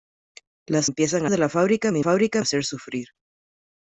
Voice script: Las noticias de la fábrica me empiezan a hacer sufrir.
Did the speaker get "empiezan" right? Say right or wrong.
wrong